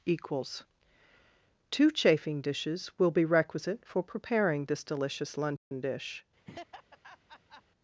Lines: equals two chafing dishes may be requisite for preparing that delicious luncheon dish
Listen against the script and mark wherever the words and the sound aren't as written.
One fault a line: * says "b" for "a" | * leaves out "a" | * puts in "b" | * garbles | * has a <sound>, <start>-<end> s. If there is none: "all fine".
* says "will" for "may"
* says "this" for "that"
* has a dropout, 5.6-5.7 s
* has a laugh, 6.4-7.6 s